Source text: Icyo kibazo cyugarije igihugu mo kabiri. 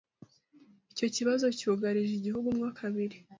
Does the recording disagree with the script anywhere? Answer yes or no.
no